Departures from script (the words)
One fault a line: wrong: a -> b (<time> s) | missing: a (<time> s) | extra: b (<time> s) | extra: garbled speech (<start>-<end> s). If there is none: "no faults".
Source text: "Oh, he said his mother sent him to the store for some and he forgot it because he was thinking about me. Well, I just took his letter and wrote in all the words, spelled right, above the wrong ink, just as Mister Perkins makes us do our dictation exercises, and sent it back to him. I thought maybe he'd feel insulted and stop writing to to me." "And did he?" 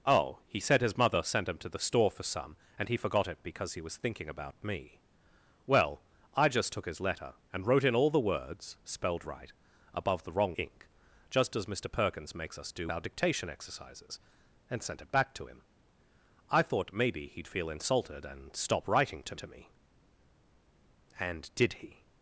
no faults